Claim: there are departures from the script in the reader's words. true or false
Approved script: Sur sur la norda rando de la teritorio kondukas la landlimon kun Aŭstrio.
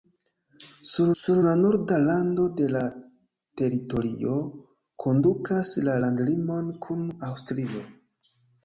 false